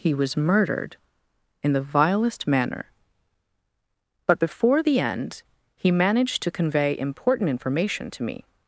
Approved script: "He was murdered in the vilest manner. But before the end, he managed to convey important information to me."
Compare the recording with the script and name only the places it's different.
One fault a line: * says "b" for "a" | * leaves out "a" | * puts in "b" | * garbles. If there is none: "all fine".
all fine